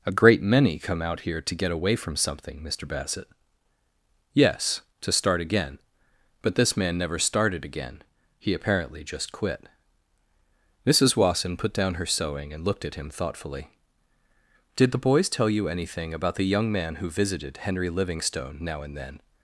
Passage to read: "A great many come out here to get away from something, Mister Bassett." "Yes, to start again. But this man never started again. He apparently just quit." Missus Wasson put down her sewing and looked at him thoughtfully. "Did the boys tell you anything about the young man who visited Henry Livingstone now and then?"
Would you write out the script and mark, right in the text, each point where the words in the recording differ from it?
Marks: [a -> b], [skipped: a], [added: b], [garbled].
"A great many come out here to get away from something, Mister Bassett." "Yes, to start again. But this man never started again. He apparently just quit." Missus Wasson put down her sewing and looked at him thoughtfully. "Did the boys tell you anything about the young man who visited Henry Livingstone now and then?"